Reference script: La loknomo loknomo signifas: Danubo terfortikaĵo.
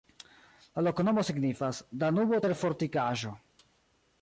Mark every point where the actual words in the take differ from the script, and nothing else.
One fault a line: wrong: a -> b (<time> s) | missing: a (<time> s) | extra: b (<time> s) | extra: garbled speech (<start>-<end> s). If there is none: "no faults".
missing: loknomo (1.2 s)